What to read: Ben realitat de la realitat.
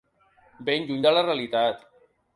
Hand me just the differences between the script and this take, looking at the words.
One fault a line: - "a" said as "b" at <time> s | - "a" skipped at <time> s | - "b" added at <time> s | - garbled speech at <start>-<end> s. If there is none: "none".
- "realitat" said as "lluny" at 0.9 s